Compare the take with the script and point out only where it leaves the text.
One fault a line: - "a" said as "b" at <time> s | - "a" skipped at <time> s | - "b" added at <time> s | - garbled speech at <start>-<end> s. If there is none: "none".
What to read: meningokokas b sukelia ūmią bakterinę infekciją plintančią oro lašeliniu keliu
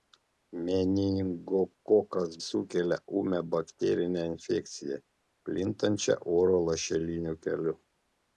- "b" skipped at 2.3 s